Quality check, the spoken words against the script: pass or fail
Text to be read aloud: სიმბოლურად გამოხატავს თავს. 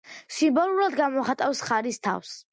fail